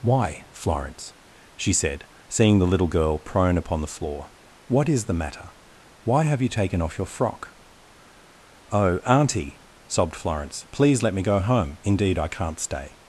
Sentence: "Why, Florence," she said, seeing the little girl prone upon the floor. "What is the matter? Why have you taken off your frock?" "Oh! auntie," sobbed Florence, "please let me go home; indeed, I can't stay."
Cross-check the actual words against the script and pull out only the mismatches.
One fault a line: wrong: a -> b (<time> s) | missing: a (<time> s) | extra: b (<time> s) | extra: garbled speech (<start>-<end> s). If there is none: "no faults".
no faults